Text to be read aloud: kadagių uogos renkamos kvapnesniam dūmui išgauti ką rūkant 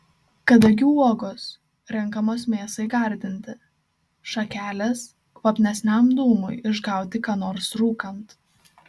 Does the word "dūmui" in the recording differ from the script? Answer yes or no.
no